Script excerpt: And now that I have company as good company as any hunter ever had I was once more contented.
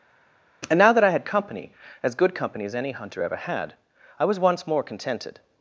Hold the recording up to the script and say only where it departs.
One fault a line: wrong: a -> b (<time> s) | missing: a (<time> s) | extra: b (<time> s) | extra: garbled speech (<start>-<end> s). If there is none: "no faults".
wrong: have -> had (1.1 s)